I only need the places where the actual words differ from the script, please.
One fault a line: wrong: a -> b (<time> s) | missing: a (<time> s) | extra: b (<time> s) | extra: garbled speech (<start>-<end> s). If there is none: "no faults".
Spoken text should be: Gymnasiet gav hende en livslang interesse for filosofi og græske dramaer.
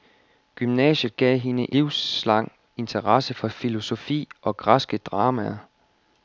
missing: en (1.8 s)